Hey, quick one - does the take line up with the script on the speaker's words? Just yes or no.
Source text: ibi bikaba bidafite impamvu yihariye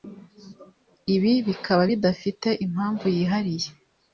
yes